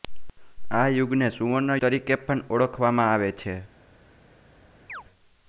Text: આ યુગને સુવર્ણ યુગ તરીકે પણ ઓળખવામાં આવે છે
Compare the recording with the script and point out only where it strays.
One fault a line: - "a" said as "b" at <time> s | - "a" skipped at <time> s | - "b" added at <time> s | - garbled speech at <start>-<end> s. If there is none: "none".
- "યુગ" skipped at 1.8 s